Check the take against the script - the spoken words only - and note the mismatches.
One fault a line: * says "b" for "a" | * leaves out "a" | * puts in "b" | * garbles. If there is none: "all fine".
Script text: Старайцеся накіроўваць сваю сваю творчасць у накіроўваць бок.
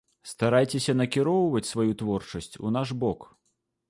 * leaves out "сваю"
* says "наш" for "накіроўваць"